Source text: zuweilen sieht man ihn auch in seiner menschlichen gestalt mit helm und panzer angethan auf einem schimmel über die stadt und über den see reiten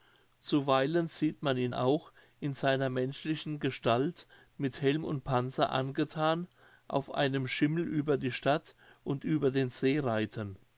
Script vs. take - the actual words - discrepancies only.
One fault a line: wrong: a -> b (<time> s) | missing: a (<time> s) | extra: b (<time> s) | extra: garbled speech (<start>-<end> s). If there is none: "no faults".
no faults